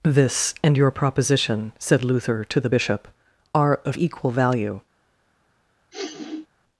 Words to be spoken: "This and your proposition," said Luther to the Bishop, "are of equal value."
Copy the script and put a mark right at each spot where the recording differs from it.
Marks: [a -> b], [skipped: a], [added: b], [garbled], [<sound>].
"This and your proposition," said Luther to the Bishop, "are of equal value." [sniff]